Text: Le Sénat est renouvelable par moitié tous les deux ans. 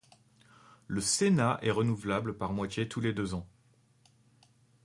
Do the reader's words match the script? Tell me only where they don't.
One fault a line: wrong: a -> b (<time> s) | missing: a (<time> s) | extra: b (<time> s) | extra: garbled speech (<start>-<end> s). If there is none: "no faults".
no faults